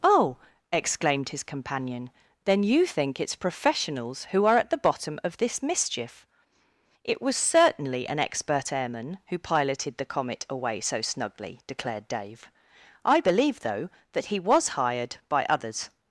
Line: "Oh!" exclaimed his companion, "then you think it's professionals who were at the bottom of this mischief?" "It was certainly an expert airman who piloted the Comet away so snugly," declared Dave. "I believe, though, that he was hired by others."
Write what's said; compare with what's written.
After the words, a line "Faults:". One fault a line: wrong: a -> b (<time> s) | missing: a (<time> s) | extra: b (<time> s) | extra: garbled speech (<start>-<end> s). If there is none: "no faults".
"Oh!" exclaimed his companion, "then you think it's professionals who are at the bottom of this mischief?" "It was certainly an expert airman who piloted the Comet away so snugly," declared Dave. "I believe, though, that he was hired by others."
Faults:
wrong: were -> are (4.5 s)